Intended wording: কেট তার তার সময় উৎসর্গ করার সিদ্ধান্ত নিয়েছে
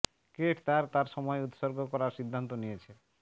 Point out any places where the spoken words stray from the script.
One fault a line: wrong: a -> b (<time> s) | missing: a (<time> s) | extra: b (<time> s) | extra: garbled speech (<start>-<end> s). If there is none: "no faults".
no faults